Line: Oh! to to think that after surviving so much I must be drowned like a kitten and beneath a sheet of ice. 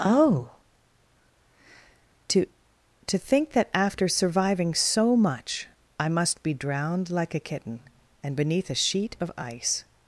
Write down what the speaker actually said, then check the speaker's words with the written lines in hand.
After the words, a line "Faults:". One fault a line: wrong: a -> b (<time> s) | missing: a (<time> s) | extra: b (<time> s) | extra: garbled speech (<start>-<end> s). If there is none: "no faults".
Oh! to to think that after surviving so much I must be drowned like a kitten and beneath a sheet of ice.
Faults:
no faults